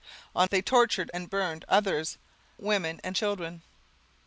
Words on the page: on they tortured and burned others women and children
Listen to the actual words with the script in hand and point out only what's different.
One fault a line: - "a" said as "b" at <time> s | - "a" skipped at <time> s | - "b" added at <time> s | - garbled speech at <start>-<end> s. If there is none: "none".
none